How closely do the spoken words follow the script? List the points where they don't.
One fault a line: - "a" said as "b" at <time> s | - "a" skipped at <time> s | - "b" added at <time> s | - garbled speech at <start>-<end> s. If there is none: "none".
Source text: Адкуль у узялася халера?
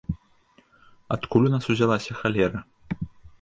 - "нас" added at 1.6 s